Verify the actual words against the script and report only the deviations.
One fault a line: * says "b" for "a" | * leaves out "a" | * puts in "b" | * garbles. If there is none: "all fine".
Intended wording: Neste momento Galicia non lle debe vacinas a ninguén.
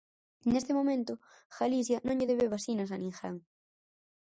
all fine